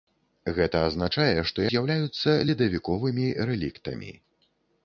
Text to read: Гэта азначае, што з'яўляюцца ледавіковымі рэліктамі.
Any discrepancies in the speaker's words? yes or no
no